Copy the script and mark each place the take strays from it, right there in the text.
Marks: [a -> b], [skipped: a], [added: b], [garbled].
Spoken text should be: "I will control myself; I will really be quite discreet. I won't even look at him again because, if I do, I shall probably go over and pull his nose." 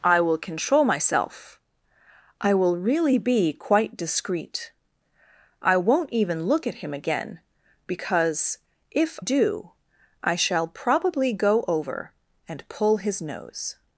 "I will control myself; I will really be quite discreet. I won't even look at him again because, if [skipped: I] do, I shall probably go over and pull his nose."